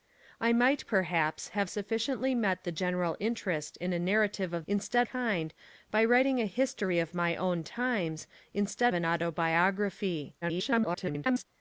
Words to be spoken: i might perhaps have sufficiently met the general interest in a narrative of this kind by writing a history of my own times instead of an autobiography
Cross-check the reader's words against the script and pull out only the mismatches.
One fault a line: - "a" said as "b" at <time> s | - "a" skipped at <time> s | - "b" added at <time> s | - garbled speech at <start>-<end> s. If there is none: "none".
- "this" said as "instead" at 4.7 s
- "of" skipped at 8.9 s
- garbled speech at 10.4-11.5 s